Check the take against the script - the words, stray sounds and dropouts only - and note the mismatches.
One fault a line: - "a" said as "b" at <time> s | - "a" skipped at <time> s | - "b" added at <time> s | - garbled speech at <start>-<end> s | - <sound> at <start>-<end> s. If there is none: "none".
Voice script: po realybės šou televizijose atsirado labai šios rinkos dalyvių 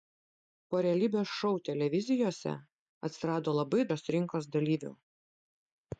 none